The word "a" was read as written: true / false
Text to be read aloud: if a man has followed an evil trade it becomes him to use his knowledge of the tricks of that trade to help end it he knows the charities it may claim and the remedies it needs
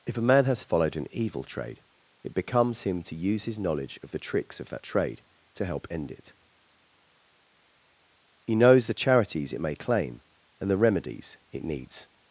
true